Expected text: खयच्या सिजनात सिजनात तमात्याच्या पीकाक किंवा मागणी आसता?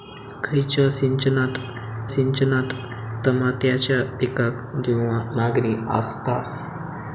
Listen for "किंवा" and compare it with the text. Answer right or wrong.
right